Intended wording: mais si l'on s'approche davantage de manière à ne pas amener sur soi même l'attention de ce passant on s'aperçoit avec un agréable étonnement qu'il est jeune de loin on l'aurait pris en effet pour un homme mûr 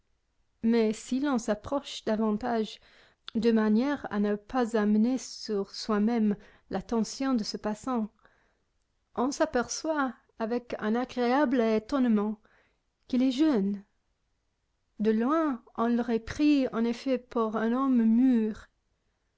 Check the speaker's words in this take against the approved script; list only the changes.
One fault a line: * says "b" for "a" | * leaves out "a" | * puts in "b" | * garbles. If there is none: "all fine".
all fine